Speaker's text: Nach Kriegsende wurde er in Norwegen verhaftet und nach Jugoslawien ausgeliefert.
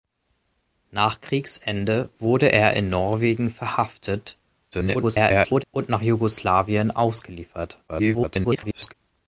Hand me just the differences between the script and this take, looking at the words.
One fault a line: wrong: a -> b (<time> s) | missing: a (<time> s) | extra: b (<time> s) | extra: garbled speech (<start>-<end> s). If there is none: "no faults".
extra: garbled speech (4.7-5.6 s)
extra: garbled speech (7.9-8.9 s)